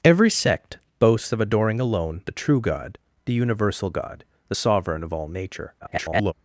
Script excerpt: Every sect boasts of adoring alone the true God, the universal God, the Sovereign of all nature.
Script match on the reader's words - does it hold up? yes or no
no